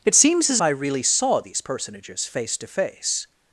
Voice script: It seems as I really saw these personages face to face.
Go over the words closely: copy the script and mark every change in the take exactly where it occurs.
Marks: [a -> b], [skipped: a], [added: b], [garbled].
It seems as I really saw these personages face to face.